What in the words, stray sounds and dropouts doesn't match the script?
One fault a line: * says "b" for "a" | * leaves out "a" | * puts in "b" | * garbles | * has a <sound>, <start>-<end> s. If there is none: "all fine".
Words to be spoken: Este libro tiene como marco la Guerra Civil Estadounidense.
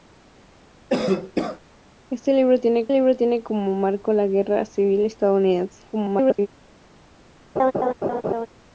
* has a cough, 0.9-1.6 s
* puts in "libro tiene"
* garbles
* has a laugh, 7.6-8.5 s